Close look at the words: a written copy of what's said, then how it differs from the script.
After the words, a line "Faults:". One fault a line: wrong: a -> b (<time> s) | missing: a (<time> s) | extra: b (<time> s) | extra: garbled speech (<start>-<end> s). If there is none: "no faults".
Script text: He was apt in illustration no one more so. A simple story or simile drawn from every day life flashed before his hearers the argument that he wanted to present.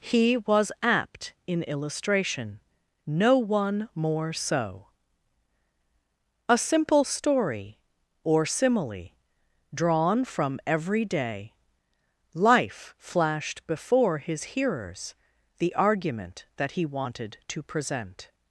He was apt in illustration no one more so. A simple story or simile drawn from every day life flashed before his hearers the argument that he wanted to present.
Faults:
no faults